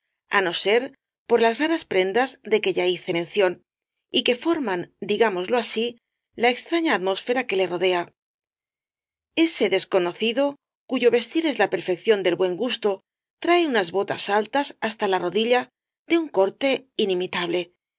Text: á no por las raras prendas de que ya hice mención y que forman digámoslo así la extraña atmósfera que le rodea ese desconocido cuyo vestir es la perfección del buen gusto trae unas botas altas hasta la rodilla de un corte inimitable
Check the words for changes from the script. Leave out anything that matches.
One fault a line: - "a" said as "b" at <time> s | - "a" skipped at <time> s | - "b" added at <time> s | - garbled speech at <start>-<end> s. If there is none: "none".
- "ser" added at 0.7 s